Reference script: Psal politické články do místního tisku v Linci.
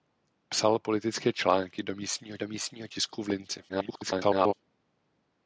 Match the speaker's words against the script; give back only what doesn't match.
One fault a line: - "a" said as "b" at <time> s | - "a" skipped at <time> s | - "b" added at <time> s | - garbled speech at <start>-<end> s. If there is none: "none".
- "do místního" added at 2.4 s
- garbled speech at 3.7-4.5 s